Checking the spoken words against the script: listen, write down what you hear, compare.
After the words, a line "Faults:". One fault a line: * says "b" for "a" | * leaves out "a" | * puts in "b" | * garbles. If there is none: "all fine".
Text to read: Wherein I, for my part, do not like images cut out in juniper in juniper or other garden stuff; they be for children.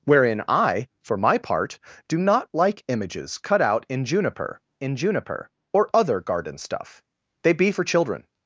Wherein I, for my part, do not like images cut out in juniper in juniper or other garden stuff; they be for children.
Faults:
all fine